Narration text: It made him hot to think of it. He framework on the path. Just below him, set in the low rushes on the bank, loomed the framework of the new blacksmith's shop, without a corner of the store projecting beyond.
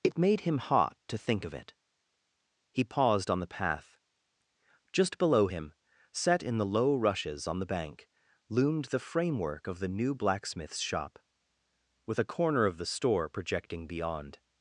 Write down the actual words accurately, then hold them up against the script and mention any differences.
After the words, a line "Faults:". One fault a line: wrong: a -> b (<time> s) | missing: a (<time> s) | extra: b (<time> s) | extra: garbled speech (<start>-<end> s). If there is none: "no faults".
It made him hot to think of it. He paused on the path. Just below him, set in the low rushes on the bank, loomed the framework of the new blacksmith's shop, with a corner of the store projecting beyond.
Faults:
wrong: framework -> paused (2.8 s)
wrong: without -> with (12.0 s)